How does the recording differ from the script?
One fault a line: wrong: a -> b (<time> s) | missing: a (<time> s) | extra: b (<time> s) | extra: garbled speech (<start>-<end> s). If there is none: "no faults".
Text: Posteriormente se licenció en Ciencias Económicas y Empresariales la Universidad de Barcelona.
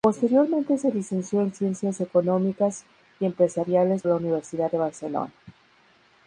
no faults